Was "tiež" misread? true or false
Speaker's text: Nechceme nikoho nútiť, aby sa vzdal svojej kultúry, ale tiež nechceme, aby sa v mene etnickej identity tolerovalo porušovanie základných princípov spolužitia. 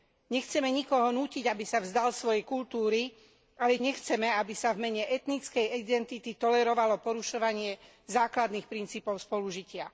true